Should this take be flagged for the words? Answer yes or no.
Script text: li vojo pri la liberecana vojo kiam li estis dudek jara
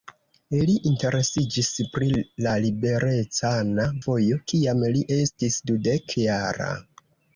yes